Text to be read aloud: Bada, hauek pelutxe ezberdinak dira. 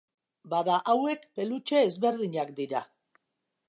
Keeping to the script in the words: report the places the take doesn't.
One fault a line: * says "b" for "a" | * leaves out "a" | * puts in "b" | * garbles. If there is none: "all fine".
all fine